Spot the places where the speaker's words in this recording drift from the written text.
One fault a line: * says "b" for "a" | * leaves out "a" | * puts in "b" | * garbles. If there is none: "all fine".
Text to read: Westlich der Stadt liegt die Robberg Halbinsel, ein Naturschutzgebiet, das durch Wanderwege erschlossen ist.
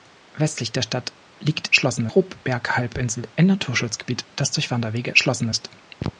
* says "erschlossen" for "die"